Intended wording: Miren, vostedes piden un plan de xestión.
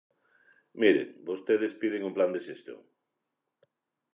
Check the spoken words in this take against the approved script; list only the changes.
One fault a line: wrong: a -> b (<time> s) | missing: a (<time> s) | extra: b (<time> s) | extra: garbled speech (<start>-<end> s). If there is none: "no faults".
no faults